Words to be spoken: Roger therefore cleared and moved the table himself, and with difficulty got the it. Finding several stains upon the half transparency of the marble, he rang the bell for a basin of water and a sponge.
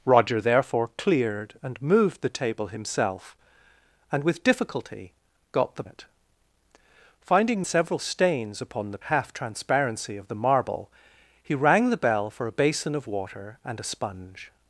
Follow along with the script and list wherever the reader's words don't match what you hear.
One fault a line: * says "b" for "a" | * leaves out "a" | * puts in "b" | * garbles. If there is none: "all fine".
all fine